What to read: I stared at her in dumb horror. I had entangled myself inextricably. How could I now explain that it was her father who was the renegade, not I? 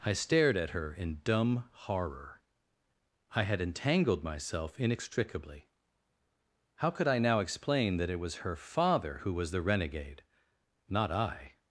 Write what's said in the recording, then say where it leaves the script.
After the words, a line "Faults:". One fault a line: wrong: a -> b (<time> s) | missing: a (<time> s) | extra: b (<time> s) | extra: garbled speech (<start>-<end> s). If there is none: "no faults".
I stared at her in dumb horror. I had entangled myself inextricably. How could I now explain that it was her father who was the renegade, not I?
Faults:
no faults